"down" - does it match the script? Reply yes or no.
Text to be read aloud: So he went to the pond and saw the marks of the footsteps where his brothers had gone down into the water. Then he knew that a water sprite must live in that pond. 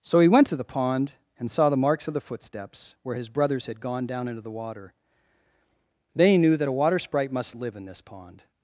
yes